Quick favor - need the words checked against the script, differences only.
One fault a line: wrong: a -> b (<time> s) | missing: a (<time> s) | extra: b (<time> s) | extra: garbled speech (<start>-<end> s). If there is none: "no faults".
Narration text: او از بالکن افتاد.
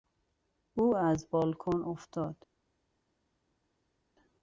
no faults